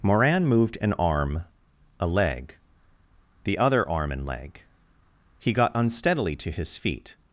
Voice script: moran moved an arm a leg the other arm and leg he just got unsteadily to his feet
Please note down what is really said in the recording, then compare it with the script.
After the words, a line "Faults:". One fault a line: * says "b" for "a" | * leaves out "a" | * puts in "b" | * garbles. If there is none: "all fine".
moran moved an arm a leg the other arm and leg he got unsteadily to his feet
Faults:
* leaves out "just"